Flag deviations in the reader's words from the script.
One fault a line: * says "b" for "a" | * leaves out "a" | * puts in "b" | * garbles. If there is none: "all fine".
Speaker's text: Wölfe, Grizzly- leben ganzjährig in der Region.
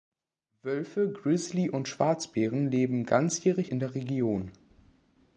* puts in "und Schwarzbären"